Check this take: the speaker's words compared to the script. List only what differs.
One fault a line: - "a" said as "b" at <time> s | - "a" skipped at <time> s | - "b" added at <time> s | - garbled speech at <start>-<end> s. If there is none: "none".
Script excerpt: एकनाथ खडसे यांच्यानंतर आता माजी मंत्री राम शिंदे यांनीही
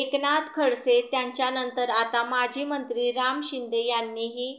none